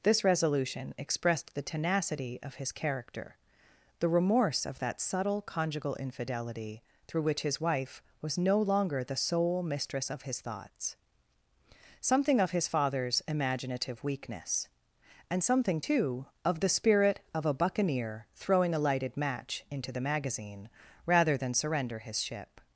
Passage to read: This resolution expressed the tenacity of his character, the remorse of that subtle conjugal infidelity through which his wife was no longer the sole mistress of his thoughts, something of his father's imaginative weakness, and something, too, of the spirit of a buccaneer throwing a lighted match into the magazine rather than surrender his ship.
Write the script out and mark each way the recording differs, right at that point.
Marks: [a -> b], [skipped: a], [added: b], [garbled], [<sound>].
This resolution expressed the tenacity of his character, the remorse of that subtle conjugal infidelity through which his wife was no longer the sole mistress of his thoughts, something of his father's imaginative weakness, and something, too, of the spirit of a buccaneer throwing a lighted match into the magazine rather than surrender his ship.